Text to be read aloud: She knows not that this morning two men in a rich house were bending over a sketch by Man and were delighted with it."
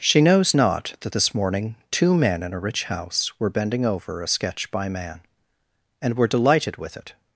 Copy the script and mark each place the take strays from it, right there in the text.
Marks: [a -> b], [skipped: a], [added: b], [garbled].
She knows not that this morning two men in a rich house were bending over a sketch by Man and were delighted with it."